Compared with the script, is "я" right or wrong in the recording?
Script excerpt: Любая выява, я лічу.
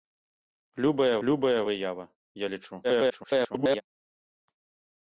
right